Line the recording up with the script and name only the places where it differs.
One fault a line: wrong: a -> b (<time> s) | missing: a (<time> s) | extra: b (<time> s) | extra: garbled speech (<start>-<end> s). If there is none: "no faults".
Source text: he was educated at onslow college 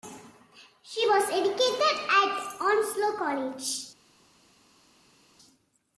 wrong: he -> she (0.8 s)